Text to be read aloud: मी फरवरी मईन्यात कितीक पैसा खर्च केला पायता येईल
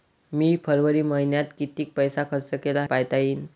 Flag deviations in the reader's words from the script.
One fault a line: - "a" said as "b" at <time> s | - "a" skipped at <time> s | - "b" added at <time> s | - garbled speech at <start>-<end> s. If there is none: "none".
none